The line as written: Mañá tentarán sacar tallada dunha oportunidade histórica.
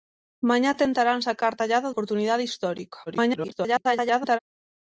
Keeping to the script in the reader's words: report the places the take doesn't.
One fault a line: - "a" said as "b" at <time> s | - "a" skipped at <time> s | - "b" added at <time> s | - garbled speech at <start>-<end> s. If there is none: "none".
- "dunha" skipped at 1.9 s
- garbled speech at 3.1-4.4 s